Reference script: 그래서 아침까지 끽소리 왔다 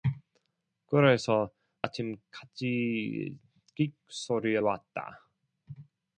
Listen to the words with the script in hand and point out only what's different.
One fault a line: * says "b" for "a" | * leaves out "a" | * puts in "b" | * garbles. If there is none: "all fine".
all fine